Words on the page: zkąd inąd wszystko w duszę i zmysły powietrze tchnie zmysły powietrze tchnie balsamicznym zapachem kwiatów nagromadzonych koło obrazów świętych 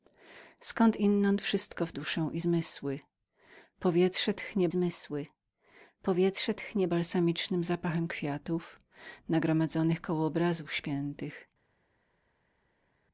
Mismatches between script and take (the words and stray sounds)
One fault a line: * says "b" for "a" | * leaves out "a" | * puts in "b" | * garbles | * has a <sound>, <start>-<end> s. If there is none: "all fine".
all fine